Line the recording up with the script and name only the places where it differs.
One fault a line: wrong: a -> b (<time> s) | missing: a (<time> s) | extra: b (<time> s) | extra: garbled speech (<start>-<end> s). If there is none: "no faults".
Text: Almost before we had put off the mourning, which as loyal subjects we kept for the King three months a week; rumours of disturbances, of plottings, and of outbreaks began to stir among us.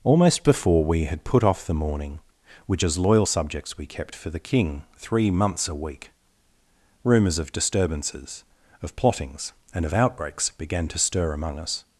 no faults